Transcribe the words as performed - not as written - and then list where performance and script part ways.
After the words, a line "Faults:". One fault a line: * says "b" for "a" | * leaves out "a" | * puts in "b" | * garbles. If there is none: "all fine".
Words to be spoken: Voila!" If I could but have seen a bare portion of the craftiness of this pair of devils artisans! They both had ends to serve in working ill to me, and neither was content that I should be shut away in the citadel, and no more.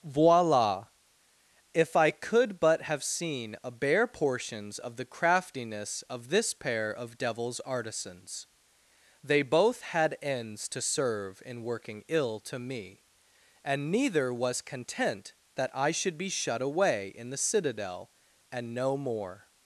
Voila!" If I could but have seen a bare portions of the craftiness of this pair of devils artisans! They both had ends to serve in working ill to me, and neither was content that I should be shut away in the citadel, and no more.
Faults:
* says "portions" for "portion"